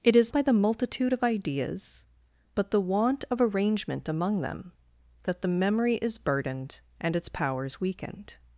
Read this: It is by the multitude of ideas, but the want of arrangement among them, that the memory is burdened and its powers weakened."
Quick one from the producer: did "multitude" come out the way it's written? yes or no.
yes